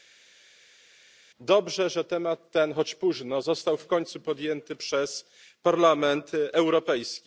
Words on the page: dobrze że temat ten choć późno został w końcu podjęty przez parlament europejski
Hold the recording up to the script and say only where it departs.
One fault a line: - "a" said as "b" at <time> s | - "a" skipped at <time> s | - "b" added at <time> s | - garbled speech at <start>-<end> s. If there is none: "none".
none